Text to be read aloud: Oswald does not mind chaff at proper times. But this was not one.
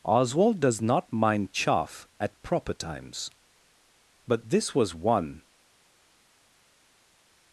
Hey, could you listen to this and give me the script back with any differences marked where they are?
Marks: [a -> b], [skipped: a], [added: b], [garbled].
Oswald does not mind chaff at proper times. But this was [skipped: not] one.